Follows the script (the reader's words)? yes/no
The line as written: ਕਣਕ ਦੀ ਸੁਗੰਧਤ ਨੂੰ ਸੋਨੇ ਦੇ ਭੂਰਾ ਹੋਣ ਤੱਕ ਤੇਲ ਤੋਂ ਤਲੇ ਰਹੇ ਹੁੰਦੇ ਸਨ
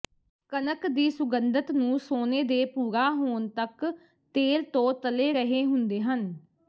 no